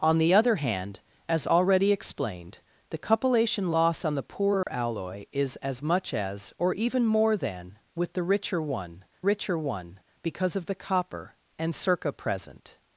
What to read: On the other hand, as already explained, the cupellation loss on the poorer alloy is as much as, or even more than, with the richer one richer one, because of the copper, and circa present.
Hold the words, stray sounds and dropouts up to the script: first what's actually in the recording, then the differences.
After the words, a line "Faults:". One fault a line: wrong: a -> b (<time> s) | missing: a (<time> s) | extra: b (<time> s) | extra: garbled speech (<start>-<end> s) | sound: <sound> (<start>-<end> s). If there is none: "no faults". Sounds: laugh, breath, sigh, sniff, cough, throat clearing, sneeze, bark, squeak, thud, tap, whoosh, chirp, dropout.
On the other hand, as already explained, the cupellation loss on the poorer alloy is as much as, or even more than, with the richer one richer one, because of the copper, and circa present.
Faults:
sound: dropout (4.6-4.7 s)